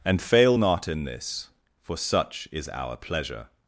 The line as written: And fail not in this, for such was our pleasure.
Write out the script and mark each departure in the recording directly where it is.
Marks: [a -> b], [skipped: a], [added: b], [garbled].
And fail not in this, for such [was -> is] our pleasure.